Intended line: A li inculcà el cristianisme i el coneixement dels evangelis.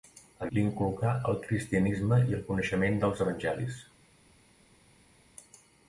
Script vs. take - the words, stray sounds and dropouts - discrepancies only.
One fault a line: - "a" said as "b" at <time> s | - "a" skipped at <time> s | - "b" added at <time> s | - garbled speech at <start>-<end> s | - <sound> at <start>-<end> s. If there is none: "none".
none